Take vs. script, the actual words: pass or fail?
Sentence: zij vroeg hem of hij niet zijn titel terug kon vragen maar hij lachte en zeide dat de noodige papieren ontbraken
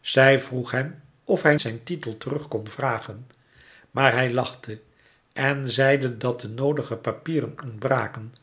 fail